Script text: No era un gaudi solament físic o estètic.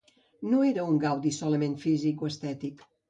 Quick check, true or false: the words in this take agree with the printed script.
true